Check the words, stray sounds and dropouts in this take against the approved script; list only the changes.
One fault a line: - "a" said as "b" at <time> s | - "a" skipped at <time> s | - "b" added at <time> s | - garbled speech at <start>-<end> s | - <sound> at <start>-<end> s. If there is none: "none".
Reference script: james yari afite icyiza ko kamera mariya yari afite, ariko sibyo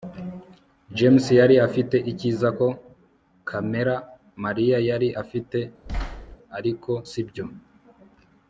- thud at 5.9-6.4 s